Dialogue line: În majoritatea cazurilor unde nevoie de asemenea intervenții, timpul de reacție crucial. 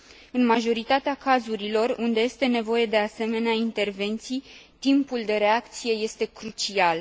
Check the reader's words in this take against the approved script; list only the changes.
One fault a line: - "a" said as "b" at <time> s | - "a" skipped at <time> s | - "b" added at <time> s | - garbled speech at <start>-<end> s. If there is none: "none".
- "este" added at 2.2 s
- "este" added at 5.9 s